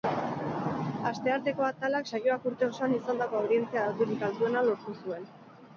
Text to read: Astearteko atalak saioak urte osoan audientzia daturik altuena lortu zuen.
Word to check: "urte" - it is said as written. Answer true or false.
true